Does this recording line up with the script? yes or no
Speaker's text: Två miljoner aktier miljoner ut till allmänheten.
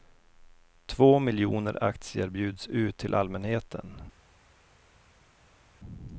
no